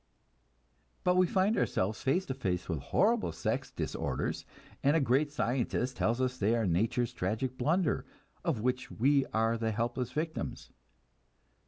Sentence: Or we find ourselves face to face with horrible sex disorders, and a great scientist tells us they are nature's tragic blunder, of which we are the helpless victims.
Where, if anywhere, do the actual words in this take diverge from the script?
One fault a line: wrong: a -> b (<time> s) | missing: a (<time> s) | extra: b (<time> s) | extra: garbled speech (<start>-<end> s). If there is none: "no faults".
wrong: Or -> But (1.0 s)